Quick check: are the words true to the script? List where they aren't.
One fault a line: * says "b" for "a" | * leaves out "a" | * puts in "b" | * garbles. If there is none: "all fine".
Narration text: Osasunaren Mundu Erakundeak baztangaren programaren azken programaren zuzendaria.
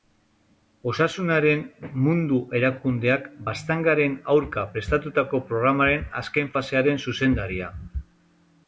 * puts in "aurka prestatutako"
* says "fasearen" for "programaren"